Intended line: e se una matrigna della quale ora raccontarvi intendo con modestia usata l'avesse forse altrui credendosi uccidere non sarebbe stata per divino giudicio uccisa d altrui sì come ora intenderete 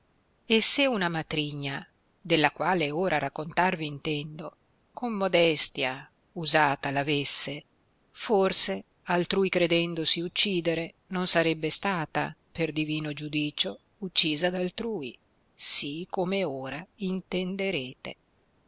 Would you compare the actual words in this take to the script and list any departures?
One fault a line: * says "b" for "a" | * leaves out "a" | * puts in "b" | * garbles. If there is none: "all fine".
all fine